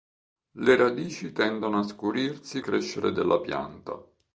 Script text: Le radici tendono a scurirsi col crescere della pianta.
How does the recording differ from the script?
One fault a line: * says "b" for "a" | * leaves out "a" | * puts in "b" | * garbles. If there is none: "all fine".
* leaves out "col"